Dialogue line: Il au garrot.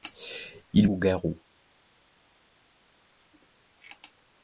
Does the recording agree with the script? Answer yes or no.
yes